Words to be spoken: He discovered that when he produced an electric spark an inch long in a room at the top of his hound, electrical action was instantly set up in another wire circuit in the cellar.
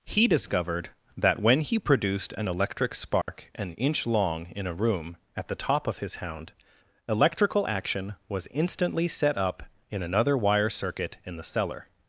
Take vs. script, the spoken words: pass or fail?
pass